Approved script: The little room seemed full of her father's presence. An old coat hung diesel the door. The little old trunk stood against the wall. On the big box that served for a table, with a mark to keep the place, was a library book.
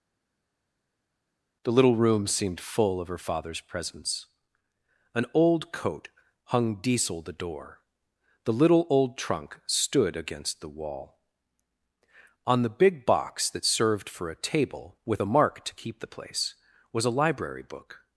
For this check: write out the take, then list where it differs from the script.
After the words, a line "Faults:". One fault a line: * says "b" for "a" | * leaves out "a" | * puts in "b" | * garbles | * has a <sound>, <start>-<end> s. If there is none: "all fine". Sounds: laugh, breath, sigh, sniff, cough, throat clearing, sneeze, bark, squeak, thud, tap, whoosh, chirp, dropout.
The little room seemed full of her father's presence. An old coat hung diesel the door. The little old trunk stood against the wall. On the big box that served for a table, with a mark to keep the place, was a library book.
Faults:
all fine